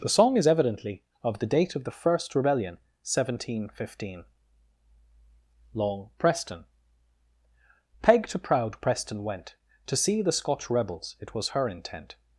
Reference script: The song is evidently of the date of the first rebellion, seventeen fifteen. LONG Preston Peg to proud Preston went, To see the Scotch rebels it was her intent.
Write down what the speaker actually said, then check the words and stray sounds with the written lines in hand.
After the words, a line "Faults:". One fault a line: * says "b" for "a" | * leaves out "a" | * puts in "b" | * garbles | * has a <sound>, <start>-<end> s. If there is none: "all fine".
The song is evidently of the date of the first rebellion, seventeen fifteen. LONG Preston Peg to proud Preston went, To see the Scotch rebels it was her intent.
Faults:
all fine